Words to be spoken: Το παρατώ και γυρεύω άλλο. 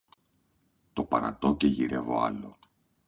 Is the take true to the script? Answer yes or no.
yes